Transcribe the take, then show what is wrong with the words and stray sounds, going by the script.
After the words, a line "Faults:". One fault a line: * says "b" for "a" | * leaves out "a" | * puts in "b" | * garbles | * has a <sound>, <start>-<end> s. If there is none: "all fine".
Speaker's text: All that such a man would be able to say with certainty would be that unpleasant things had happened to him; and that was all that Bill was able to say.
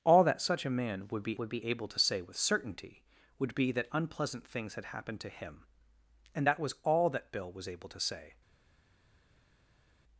All that such a man would be would be able to say with certainty would be that unpleasant things had happened to him; and that was all that Bill was able to say.
Faults:
* puts in "would be"